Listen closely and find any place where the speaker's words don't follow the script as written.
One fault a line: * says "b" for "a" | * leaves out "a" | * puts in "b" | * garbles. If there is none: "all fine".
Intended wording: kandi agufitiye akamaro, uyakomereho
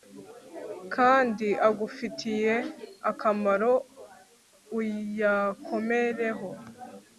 all fine